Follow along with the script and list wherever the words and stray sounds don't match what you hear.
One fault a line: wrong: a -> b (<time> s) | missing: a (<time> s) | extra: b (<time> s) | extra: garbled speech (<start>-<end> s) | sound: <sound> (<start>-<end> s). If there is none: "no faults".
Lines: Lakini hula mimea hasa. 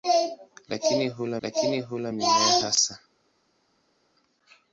extra: lakini hula (1.4 s)